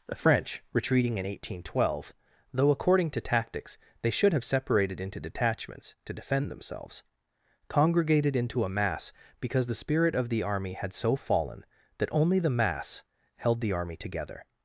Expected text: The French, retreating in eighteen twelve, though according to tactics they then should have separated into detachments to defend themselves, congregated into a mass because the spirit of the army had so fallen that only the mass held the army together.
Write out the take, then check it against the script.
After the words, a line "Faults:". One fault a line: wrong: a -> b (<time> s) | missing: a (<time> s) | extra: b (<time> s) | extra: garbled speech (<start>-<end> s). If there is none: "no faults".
The French, retreating in eighteen twelve, though according to tactics they should have separated into detachments to defend themselves, congregated into a mass because the spirit of the army had so fallen that only the mass held the army together.
Faults:
missing: then (4.1 s)